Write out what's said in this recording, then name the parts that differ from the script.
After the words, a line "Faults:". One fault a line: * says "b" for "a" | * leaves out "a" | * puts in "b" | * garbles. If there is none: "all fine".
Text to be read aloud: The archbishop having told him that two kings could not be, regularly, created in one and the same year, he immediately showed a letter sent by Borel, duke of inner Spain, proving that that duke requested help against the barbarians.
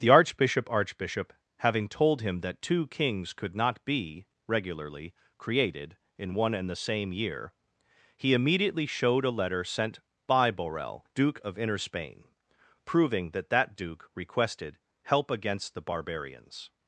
The archbishop archbishop having told him that two kings could not be, regularly, created in one and the same year, he immediately showed a letter sent by Borel, duke of inner Spain, proving that that duke requested help against the barbarians.
Faults:
* puts in "archbishop"